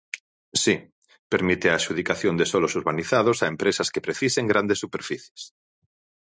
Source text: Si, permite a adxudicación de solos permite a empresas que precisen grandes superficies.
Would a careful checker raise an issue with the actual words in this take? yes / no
yes